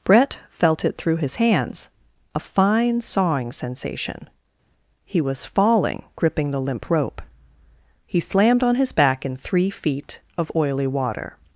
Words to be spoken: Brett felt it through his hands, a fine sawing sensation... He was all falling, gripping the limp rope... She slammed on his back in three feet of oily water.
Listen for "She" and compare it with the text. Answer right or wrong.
wrong